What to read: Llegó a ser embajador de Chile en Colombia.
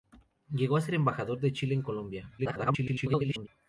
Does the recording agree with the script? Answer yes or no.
no